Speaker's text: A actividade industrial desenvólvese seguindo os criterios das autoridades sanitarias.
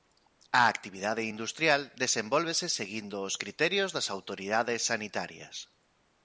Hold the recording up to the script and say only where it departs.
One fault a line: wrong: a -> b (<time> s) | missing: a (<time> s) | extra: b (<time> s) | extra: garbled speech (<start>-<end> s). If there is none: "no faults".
no faults